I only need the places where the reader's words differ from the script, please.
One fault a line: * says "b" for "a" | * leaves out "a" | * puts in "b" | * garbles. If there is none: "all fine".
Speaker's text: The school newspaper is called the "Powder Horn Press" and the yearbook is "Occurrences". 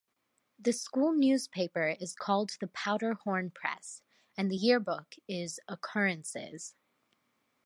all fine